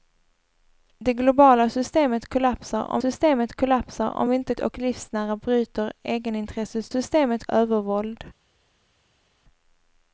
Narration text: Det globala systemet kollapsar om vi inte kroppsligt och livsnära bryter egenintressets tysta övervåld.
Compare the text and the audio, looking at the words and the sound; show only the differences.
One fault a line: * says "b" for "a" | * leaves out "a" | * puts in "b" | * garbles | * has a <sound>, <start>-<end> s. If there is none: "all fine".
* puts in "systemet kollapsar om"
* leaves out "kroppsligt"
* says "systemet" for "tysta"